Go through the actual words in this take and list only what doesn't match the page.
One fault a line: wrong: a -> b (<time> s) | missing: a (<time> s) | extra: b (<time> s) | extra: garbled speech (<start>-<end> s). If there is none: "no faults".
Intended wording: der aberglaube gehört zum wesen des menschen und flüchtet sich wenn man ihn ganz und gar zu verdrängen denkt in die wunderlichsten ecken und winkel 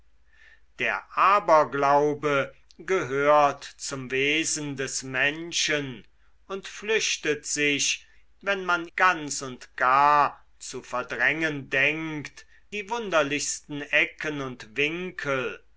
missing: ihn (8.9 s)
missing: in (12.5 s)